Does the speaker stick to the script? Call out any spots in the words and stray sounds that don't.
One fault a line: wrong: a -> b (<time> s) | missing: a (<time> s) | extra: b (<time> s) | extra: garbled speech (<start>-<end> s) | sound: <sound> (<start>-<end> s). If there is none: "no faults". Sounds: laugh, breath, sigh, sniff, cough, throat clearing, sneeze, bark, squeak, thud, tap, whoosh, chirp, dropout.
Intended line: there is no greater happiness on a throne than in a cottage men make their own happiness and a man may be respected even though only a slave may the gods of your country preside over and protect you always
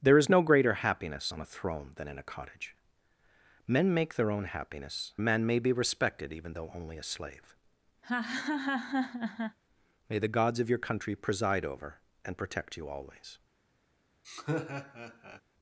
missing: and (5.1 s)
sound: laugh (8.0-9.6 s)
sound: laugh (14.2-15.4 s)